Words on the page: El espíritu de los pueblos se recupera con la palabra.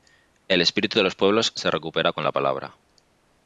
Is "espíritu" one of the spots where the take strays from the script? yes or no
no